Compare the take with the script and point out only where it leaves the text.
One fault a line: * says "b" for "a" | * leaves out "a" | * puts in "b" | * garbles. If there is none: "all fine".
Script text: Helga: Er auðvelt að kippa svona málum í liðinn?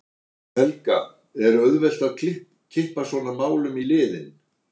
all fine